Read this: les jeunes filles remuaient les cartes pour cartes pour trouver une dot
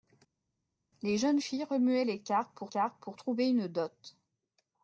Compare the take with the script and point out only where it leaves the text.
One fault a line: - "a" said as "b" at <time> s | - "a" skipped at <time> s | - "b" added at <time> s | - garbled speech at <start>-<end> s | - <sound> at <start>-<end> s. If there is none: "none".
none